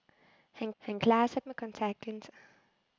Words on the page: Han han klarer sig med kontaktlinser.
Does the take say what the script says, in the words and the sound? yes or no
yes